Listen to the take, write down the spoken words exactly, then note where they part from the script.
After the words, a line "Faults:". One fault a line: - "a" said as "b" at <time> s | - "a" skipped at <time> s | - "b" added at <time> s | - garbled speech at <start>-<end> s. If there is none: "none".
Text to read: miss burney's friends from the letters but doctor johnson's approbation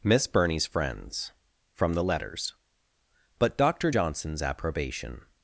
miss burney's friends from the letters but doctor johnson's approbation
Faults:
none